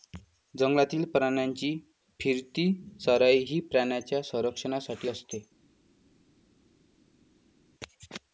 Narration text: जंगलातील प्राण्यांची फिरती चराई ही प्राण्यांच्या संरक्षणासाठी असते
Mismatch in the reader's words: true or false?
false